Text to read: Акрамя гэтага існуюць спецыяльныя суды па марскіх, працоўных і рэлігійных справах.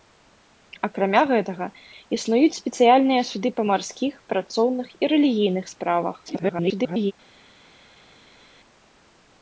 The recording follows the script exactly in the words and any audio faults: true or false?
false